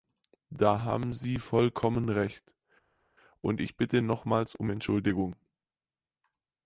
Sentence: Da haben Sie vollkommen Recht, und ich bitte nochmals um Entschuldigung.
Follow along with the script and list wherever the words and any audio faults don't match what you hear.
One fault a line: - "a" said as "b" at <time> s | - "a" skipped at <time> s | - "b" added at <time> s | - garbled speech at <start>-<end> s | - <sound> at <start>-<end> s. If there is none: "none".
none